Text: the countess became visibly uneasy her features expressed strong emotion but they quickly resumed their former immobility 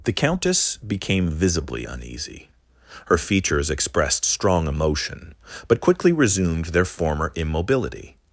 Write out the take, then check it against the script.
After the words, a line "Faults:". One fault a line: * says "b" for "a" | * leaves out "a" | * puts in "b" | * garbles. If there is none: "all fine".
the countess became visibly uneasy her features expressed strong emotion but quickly resumed their former immobility
Faults:
* leaves out "they"